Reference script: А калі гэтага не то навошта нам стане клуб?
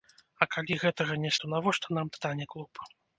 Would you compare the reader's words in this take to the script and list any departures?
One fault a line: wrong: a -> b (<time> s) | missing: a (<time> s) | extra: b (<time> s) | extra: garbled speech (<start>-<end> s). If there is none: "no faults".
no faults